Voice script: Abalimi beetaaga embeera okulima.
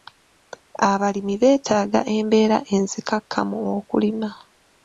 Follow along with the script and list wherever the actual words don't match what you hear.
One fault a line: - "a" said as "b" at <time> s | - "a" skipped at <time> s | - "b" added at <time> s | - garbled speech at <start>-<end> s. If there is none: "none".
- "enzikakkamu" added at 2.8 s